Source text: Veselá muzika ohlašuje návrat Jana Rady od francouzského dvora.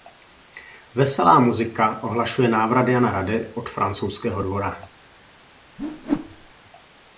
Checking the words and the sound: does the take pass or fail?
fail